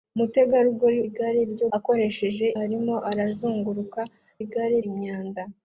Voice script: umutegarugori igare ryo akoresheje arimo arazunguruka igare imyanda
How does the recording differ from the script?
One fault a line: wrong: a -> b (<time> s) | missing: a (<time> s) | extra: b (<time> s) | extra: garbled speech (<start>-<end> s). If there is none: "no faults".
no faults